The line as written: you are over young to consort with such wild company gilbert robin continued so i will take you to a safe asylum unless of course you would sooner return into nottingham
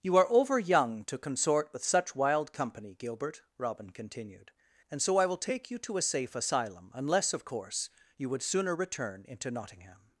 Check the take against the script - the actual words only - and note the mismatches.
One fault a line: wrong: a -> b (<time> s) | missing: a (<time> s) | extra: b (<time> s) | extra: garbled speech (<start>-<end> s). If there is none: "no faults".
extra: and (4.9 s)